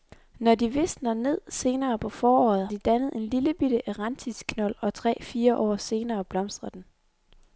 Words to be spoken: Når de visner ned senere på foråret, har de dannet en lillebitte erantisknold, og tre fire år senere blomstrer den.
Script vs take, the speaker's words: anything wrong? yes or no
yes